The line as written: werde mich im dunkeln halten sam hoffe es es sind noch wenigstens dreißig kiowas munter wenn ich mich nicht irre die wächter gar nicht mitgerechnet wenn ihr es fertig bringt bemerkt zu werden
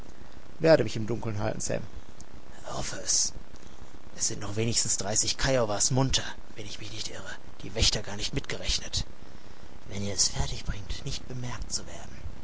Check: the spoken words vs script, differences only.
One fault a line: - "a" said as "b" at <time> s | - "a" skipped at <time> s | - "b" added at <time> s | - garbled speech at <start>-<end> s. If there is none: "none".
- "nicht" added at 11.0 s